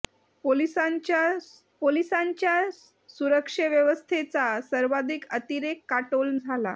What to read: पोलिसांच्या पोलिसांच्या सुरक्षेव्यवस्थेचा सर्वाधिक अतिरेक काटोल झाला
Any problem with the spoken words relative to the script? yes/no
no